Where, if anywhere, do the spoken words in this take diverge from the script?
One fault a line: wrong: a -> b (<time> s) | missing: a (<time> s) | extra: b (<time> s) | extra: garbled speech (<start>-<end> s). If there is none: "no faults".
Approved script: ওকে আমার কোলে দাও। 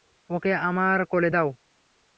no faults